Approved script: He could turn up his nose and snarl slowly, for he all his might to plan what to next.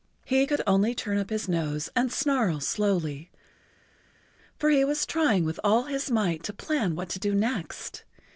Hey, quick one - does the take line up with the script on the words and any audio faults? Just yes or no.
no